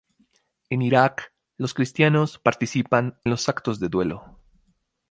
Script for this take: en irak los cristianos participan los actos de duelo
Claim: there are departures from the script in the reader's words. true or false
false